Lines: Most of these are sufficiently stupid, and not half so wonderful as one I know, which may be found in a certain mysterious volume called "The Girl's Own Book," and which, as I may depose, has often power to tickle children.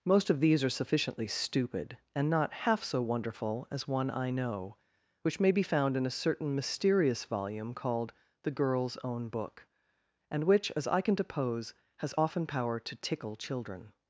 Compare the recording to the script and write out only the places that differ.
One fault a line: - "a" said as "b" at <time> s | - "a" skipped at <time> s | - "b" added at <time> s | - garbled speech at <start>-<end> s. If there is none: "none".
- "may" said as "can" at 11.0 s